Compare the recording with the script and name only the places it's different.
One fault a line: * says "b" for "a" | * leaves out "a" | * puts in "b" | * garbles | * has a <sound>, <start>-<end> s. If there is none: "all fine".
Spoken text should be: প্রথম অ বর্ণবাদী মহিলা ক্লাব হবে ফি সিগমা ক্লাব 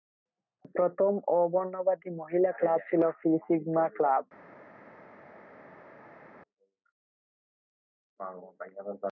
* says "ছিল" for "হবে"